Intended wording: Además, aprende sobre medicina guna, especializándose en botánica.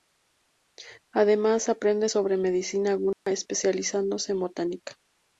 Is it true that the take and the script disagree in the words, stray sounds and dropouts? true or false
true